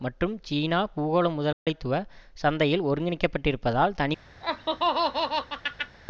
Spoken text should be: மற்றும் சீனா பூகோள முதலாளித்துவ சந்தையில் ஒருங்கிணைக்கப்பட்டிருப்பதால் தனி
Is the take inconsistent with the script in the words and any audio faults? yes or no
yes